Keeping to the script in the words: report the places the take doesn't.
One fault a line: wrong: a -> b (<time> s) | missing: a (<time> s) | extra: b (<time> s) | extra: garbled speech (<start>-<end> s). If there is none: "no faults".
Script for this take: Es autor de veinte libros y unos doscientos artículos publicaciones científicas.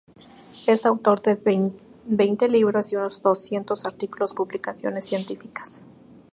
no faults